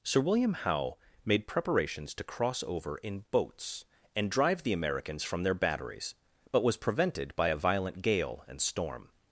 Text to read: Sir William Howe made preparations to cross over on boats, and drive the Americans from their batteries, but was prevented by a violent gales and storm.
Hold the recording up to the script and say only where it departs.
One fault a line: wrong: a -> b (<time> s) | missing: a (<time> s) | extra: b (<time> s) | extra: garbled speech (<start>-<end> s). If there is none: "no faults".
wrong: on -> in (3.0 s)
wrong: gales -> gale (8.0 s)